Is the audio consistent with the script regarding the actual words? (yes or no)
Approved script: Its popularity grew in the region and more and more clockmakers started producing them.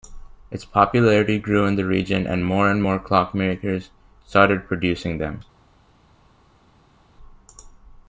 yes